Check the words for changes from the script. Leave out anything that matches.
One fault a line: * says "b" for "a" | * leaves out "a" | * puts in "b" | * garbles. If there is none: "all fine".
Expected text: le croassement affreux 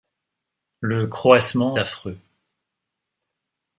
all fine